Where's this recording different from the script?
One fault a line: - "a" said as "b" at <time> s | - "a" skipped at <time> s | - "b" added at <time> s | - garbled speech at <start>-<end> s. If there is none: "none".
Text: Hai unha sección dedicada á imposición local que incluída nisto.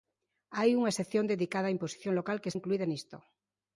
none